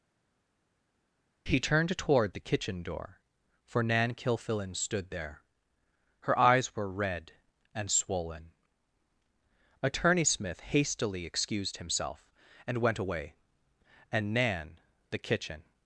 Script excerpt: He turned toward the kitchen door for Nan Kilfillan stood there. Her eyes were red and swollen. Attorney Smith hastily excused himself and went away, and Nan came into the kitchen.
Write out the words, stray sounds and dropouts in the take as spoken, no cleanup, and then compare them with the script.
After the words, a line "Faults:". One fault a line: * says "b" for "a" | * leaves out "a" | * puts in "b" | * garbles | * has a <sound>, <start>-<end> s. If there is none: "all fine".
He turned toward the kitchen door for Nan Kilfillan stood there. Her eyes were red and swollen. Attorney Smith hastily excused himself and went away, and Nan the kitchen.
Faults:
* leaves out "came into"